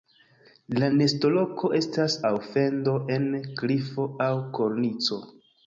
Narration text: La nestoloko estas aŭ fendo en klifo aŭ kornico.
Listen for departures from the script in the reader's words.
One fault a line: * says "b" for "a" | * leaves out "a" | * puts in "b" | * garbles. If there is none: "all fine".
all fine